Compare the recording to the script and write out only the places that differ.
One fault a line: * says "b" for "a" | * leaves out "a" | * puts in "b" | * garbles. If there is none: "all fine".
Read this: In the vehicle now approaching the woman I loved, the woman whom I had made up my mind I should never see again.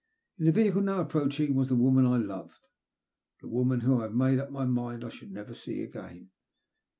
* puts in "was"